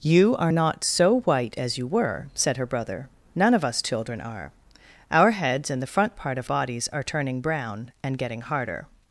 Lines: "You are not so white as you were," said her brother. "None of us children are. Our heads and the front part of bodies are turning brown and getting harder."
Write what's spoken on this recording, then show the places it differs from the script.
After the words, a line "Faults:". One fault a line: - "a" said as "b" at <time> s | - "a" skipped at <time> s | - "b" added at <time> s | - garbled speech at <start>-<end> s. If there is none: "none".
"You are not so white as you were," said her brother. "None of us children are. Our heads and the front part of bodies are turning brown and getting harder."
Faults:
none